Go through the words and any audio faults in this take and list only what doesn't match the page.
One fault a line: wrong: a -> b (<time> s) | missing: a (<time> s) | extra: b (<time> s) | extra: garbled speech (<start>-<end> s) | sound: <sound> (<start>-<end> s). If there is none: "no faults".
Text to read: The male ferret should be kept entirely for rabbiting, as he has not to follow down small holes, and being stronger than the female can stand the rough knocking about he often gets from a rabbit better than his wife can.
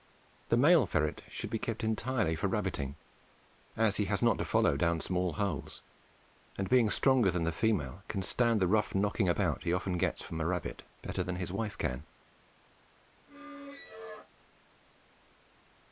sound: squeak (13.3-14.3 s)